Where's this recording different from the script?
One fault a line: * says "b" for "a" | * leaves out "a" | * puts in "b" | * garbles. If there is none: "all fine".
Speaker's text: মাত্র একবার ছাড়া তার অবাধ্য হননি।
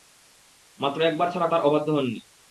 all fine